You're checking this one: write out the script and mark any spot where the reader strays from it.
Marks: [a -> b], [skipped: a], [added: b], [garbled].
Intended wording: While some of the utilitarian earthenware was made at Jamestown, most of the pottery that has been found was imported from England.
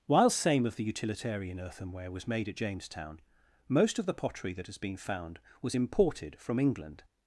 While [some -> same] of the utilitarian earthenware was made at Jamestown, most of the pottery that has been found was imported from England.